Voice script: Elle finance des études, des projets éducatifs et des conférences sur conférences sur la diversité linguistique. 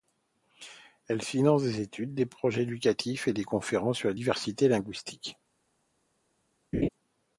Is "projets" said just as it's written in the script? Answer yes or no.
yes